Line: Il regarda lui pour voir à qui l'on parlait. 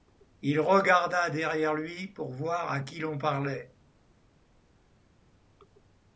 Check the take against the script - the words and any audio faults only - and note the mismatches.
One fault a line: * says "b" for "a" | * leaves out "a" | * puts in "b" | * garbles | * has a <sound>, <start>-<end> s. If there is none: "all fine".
* puts in "derrière"